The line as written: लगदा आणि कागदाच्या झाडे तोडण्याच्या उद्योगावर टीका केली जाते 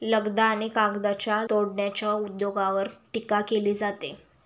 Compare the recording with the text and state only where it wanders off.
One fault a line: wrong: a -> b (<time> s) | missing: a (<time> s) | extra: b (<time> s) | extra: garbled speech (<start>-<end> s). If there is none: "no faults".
missing: झाडे (1.4 s)